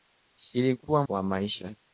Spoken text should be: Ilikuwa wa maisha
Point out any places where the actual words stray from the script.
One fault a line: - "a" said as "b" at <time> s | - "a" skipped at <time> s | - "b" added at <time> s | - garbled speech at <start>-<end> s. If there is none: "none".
none